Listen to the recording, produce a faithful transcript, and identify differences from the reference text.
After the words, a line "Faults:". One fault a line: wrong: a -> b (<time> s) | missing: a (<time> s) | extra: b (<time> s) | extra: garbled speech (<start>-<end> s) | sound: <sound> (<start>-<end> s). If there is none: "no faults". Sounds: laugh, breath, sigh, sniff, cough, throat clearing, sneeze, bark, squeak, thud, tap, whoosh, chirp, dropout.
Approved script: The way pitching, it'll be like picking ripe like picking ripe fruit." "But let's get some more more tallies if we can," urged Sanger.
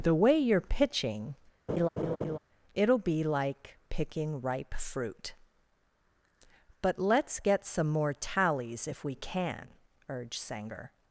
The way you're pitching, it'll be like picking ripe fruit." "But let's get some more tallies if we can," urged Sanger.
Faults:
extra: you're (0.3 s)
sound: laugh (1.7-2.4 s)
missing: like picking ripe (4.7 s)
missing: more (8.1 s)